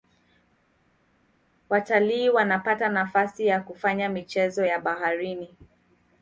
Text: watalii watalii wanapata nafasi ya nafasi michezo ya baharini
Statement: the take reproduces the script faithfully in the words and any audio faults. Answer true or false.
false